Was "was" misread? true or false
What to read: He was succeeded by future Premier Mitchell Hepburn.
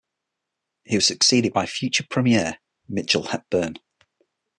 false